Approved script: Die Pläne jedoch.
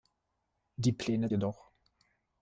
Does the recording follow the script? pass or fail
pass